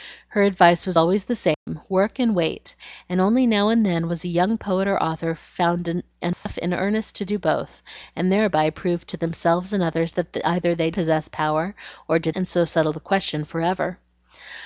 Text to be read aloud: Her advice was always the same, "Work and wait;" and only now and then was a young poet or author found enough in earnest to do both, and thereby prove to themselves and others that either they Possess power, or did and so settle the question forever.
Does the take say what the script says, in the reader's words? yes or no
yes